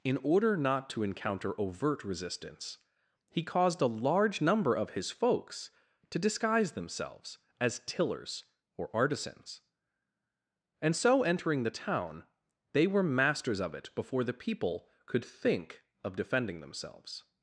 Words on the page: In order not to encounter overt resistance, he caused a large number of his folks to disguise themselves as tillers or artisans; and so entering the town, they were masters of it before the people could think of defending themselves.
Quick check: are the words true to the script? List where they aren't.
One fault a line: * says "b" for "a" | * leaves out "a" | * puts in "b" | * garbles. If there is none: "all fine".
all fine